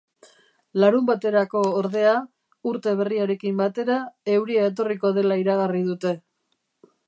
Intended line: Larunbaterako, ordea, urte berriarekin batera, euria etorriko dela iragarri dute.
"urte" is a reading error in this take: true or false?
false